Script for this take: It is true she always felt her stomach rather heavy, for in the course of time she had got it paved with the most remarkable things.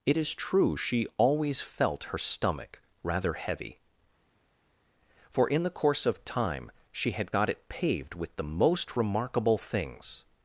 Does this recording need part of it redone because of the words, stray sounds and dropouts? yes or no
no